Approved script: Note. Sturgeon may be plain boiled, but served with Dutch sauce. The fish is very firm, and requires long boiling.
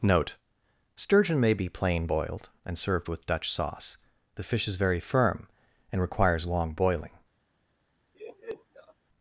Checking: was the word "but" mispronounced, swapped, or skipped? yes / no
yes